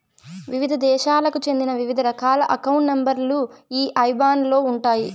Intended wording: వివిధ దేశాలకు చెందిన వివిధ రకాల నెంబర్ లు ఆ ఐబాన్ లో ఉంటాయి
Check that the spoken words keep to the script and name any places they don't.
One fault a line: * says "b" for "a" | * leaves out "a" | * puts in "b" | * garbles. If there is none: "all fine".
* puts in "అకౌంట్"
* says "ఈ" for "ఆ"